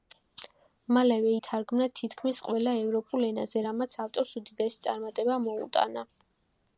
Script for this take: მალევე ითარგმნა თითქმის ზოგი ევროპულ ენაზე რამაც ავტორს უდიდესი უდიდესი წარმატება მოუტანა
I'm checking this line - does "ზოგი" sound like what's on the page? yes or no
no